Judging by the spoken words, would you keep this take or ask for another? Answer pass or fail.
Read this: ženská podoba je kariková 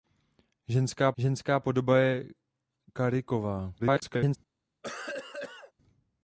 fail